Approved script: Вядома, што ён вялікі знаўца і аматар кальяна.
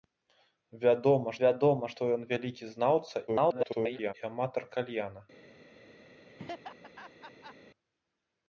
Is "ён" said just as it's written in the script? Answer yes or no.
yes